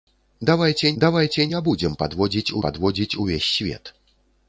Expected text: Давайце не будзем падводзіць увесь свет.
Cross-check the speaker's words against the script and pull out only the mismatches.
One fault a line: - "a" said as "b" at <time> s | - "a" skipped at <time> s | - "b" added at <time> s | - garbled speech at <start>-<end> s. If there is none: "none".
- "давайце" added at 1.0 s
- "падводзіць" added at 2.7 s